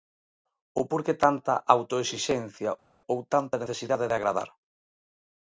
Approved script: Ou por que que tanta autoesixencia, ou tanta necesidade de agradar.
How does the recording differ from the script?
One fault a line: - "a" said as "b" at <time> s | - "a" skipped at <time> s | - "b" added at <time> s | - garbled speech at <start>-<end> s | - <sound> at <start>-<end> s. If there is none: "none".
- "que" skipped at 1.2 s